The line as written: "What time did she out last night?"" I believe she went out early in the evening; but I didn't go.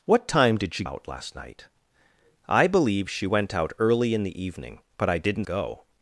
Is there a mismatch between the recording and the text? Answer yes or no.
no